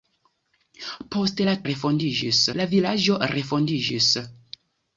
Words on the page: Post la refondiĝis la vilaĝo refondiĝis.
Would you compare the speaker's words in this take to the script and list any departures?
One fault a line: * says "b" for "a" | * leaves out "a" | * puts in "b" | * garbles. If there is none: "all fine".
all fine